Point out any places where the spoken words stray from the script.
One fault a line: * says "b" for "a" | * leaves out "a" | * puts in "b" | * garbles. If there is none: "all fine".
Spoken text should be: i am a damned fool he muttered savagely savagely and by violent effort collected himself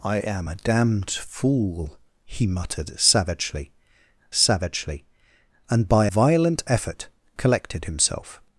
all fine